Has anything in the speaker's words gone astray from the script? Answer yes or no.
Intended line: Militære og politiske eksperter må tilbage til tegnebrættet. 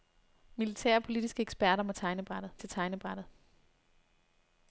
yes